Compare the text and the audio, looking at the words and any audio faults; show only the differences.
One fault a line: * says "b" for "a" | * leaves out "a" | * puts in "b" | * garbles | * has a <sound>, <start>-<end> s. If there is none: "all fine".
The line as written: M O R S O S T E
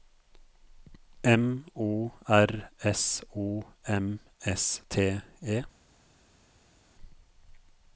* puts in "M"